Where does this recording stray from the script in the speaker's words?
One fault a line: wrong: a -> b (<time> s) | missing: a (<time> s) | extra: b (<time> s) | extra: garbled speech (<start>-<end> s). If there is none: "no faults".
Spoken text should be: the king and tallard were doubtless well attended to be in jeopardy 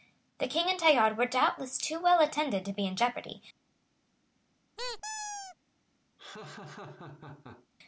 extra: too (1.8 s)